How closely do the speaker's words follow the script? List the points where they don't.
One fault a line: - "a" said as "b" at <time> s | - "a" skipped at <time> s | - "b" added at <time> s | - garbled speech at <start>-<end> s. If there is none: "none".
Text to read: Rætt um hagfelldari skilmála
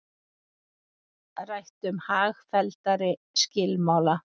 none